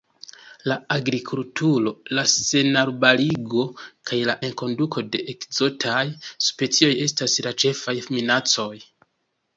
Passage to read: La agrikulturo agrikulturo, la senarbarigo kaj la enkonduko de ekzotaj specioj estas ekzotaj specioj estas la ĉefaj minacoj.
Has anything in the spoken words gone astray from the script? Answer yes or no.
yes